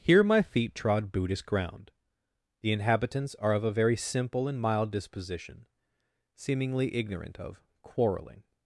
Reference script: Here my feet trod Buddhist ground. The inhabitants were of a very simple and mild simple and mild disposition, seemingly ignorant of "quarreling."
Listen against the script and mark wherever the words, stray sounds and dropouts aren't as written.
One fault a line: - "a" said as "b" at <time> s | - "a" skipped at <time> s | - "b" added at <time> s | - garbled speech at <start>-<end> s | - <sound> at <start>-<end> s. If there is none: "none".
- "were" said as "are" at 3.4 s
- "simple and mild" skipped at 4.9 s